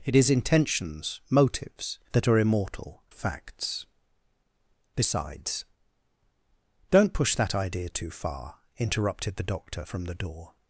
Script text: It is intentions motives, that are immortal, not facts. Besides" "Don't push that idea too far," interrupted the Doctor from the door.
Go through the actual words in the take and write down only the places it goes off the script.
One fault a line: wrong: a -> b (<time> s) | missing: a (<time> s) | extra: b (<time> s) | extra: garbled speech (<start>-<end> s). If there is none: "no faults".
missing: not (3.0 s)